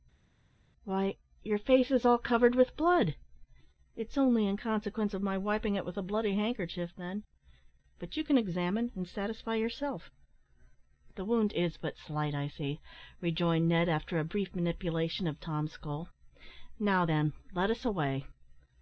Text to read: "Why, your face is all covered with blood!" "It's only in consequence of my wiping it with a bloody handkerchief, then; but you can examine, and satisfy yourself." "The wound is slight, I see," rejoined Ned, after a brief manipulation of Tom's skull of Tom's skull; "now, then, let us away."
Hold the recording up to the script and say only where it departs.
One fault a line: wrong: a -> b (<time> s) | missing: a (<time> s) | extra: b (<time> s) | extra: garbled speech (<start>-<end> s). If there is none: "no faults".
extra: but (11.8 s)
missing: of Tom's skull (16.1 s)